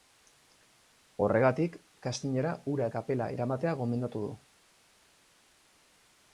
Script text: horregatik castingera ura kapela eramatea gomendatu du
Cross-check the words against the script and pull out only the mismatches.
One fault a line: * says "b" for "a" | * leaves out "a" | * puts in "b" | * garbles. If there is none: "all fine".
all fine